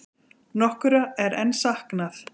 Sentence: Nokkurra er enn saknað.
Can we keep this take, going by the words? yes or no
yes